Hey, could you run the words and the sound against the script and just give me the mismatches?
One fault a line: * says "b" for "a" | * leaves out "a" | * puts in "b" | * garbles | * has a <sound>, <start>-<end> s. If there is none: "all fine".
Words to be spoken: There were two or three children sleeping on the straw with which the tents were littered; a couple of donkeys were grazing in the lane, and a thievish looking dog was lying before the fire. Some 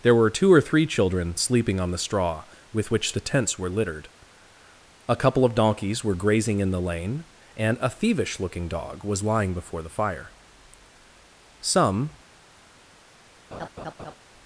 * has a laugh, 13.5-14.2 s